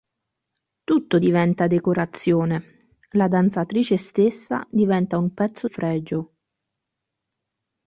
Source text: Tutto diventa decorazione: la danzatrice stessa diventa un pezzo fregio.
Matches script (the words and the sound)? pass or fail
pass